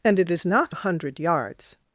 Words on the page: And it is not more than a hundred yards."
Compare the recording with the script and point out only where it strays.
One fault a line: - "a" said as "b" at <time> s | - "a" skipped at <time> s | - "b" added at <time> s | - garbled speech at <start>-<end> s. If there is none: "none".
- "more than" skipped at 0.8 s